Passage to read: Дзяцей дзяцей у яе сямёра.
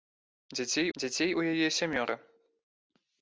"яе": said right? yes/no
yes